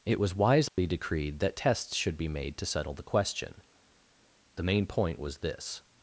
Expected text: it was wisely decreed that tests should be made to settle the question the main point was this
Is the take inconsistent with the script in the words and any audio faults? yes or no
yes